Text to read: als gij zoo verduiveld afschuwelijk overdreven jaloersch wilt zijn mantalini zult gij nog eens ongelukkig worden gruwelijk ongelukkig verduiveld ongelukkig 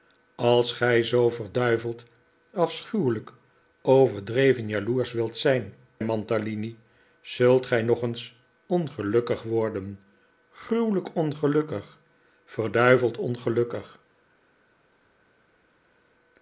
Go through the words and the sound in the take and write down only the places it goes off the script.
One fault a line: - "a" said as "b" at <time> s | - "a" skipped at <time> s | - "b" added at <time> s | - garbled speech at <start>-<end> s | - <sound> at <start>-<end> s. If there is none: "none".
none